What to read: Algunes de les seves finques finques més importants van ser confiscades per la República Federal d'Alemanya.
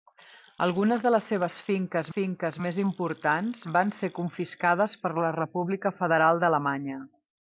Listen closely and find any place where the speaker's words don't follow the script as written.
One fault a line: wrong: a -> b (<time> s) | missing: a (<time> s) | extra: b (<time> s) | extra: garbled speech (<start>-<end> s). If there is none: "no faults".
no faults